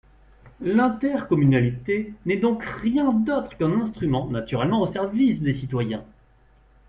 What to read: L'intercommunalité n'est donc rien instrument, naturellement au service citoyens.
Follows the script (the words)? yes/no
no